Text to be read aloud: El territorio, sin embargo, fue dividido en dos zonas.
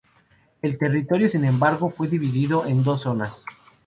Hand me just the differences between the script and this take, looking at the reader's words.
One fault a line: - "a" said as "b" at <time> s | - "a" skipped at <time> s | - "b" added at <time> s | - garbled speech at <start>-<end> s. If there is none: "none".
none